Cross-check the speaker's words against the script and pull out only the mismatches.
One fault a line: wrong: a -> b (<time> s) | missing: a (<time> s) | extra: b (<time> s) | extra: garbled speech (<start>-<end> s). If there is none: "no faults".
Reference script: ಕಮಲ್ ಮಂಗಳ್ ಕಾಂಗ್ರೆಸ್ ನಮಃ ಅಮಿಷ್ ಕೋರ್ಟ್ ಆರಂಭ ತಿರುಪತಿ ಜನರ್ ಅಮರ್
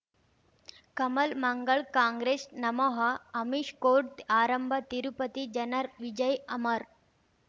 extra: ವಿಜಯ್ (6.0 s)